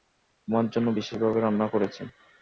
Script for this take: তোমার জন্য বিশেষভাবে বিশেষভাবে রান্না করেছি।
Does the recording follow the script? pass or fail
fail